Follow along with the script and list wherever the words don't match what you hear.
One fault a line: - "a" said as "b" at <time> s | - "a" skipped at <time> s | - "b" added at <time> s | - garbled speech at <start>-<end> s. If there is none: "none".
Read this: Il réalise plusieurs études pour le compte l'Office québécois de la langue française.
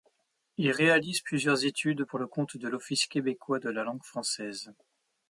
- "de" added at 2.6 s